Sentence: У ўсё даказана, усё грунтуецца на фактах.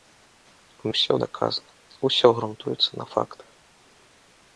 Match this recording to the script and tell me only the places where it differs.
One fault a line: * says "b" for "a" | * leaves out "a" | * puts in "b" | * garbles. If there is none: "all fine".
all fine